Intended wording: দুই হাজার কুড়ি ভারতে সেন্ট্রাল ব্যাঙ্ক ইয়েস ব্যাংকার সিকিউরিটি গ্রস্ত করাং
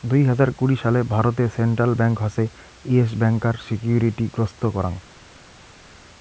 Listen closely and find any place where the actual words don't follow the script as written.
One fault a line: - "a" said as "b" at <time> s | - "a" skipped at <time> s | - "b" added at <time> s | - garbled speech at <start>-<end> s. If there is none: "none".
- "সালে" added at 0.8 s
- "হসে" added at 2.2 s